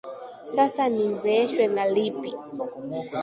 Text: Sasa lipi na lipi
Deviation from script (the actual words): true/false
true